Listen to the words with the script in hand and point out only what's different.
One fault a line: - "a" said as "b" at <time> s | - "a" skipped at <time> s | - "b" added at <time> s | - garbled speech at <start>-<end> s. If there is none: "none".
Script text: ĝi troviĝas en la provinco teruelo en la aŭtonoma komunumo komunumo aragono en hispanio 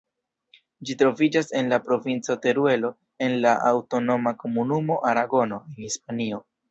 - "komunumo" skipped at 5.0 s